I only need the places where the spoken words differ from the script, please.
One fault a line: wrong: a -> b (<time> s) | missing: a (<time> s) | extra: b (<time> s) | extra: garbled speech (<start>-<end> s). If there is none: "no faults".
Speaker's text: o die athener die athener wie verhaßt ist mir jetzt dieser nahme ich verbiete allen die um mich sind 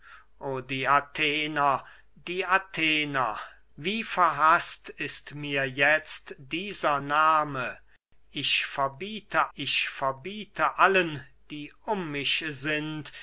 extra: ich verbiete (9.5 s)